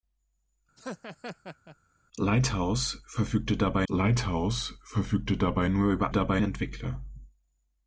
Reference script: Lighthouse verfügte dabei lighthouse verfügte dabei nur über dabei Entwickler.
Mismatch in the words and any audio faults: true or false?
true